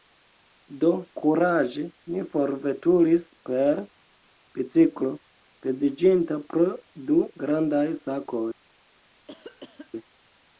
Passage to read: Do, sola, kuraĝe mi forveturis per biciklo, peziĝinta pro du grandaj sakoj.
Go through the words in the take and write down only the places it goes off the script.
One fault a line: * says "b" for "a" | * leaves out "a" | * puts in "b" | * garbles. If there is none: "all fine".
* leaves out "sola"